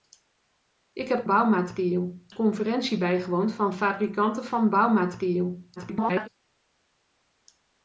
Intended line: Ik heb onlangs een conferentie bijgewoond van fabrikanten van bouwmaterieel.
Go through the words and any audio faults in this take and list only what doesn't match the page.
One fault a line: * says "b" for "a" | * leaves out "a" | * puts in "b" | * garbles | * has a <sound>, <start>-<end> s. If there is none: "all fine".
* says "bouwmaterieel" for "onlangs"
* garbles